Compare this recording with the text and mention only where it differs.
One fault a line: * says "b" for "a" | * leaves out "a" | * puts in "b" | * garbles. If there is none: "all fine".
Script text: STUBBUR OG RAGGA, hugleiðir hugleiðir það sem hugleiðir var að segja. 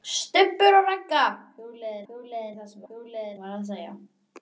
all fine